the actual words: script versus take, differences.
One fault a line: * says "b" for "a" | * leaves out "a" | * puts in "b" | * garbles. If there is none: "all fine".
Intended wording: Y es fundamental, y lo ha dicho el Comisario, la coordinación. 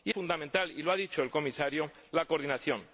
* leaves out "es"